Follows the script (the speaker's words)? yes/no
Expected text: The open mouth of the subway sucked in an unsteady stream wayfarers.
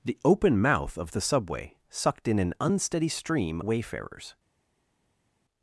yes